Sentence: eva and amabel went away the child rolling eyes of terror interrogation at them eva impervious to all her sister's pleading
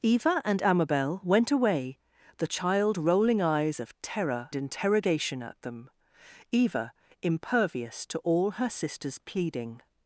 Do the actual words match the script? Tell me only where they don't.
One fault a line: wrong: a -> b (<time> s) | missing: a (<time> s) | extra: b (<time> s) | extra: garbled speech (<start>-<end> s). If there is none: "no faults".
no faults